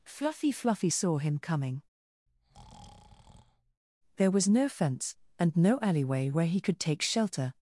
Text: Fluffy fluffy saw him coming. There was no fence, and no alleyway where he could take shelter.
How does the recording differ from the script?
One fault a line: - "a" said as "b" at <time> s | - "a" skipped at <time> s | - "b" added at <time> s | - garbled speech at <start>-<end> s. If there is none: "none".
none